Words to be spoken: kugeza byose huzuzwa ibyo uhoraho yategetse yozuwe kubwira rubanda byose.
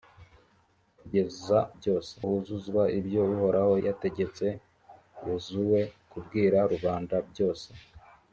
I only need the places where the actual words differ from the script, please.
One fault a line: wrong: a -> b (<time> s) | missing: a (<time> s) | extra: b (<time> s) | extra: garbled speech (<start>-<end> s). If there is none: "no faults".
no faults